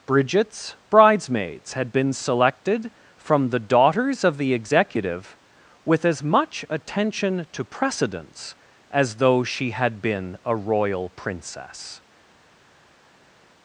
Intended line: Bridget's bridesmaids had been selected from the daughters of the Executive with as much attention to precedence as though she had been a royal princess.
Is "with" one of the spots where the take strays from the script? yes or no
no